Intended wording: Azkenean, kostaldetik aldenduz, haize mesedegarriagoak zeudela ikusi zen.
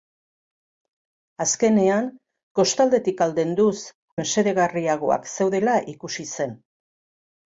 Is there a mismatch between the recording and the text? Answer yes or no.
yes